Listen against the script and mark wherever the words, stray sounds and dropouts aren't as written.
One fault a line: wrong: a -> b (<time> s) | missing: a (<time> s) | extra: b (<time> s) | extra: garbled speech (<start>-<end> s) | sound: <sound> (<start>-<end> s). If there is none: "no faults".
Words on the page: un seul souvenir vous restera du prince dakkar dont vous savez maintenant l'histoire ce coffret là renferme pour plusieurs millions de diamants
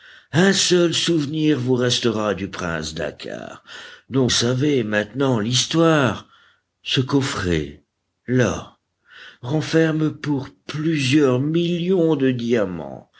missing: vous (4.3 s)